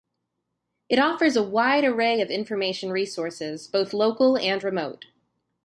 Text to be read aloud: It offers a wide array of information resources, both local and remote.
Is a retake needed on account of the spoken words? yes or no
no